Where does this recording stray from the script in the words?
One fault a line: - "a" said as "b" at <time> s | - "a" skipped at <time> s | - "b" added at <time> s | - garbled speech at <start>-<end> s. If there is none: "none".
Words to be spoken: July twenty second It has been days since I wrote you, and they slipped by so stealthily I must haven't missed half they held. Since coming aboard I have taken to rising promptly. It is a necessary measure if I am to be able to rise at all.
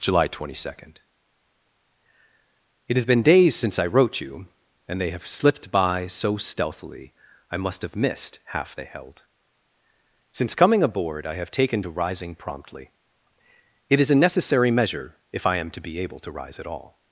- "have" added at 5.1 s
- "haven't" said as "have" at 7.8 s